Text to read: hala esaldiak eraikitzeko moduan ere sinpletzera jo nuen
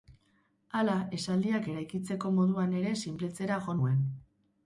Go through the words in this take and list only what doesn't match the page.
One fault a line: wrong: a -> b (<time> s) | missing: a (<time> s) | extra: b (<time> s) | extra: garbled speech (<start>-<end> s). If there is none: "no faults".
no faults